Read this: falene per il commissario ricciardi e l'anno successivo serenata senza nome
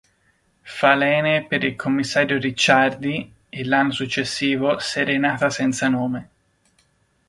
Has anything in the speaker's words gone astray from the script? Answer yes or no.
no